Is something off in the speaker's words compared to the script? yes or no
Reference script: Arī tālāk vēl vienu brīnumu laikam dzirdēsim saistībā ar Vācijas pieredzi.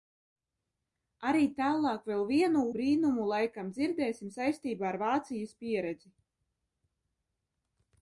no